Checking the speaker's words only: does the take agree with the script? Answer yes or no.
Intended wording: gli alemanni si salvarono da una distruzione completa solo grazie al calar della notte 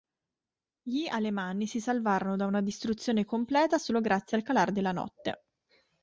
yes